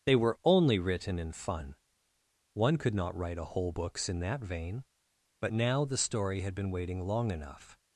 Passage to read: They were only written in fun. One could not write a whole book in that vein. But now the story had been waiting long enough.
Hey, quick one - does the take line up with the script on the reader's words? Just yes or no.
no